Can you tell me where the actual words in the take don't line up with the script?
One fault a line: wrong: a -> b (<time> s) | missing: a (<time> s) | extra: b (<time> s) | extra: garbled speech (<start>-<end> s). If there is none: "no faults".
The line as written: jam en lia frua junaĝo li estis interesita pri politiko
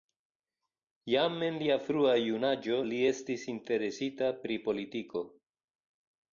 no faults